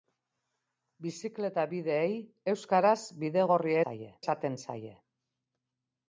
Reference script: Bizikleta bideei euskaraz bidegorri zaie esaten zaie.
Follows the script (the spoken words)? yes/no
yes